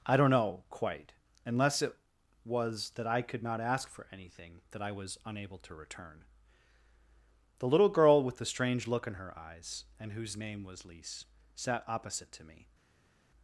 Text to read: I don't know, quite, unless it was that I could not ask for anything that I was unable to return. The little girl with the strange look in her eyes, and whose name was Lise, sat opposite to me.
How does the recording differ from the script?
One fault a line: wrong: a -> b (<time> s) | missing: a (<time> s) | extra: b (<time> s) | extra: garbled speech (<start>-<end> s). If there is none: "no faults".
no faults